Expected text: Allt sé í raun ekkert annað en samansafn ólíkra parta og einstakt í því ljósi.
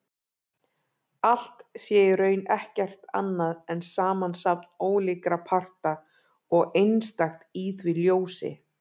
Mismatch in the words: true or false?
false